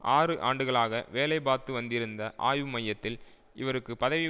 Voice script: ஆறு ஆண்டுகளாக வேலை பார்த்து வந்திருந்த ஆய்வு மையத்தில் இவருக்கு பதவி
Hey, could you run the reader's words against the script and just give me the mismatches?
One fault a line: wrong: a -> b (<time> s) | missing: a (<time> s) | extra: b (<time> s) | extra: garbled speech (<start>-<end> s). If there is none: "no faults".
no faults